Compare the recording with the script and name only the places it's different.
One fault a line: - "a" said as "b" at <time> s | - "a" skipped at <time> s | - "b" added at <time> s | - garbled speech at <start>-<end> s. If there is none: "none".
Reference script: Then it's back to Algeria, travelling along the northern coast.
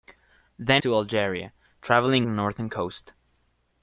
- "it's back" skipped at 0.8 s
- "along" skipped at 2.3 s